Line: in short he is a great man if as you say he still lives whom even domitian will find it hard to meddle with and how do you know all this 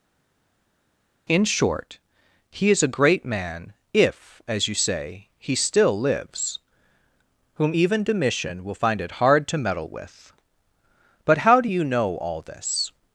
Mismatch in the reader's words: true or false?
true